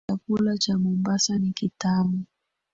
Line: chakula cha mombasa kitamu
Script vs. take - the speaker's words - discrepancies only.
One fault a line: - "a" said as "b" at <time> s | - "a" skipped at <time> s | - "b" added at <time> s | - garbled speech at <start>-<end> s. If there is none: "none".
- "ni" added at 1.4 s